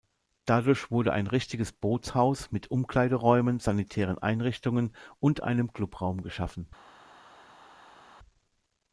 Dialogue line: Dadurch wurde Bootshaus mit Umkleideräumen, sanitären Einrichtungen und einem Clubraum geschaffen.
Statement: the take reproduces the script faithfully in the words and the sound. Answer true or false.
false